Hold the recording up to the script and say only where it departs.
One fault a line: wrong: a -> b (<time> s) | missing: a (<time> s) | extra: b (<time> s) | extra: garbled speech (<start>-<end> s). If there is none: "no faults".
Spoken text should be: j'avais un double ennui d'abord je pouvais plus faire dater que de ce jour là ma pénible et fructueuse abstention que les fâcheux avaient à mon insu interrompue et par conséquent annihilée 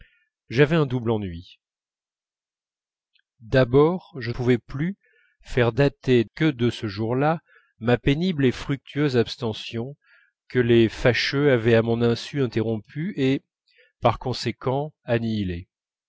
no faults